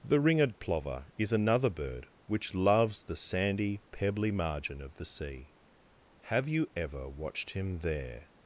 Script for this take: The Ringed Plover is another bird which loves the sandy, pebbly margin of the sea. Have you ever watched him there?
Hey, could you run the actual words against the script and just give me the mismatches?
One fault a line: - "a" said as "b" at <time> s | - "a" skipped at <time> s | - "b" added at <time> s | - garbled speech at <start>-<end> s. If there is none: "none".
none